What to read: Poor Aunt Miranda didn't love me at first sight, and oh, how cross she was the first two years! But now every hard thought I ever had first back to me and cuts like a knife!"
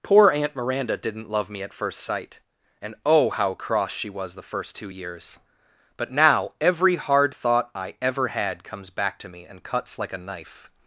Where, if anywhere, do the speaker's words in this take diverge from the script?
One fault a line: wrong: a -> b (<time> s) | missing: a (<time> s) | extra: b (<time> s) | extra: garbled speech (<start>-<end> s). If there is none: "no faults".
wrong: first -> comes (8.6 s)